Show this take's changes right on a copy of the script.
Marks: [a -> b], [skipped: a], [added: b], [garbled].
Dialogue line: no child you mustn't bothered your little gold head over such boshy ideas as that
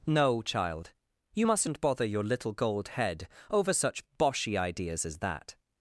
no child you mustn't [bothered -> bother] your little gold head over such boshy ideas as that